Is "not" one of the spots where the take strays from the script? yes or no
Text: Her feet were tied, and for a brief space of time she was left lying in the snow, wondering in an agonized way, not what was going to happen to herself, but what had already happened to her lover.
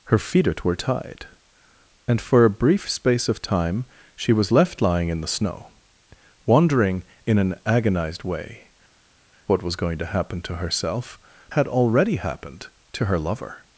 yes